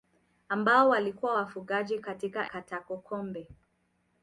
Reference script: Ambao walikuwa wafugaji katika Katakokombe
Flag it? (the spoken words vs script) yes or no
no